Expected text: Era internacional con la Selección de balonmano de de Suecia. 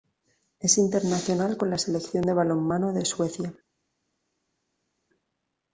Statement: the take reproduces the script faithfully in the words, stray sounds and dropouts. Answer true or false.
false